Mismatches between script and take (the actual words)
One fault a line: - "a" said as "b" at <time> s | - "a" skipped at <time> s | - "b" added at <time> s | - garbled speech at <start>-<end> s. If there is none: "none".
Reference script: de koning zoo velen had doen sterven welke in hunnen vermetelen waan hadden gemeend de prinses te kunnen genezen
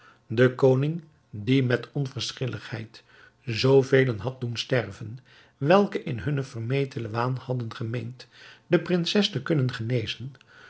- "die met onverschilligheid" added at 1.3 s